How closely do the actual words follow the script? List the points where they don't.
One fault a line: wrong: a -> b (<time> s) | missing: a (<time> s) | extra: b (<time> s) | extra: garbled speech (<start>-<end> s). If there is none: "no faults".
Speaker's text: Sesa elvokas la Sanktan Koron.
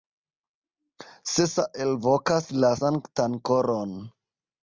no faults